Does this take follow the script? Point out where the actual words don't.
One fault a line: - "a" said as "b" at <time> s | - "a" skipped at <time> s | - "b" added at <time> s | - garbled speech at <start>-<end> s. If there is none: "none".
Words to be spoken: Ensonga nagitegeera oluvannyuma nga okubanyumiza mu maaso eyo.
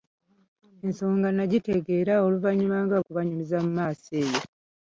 none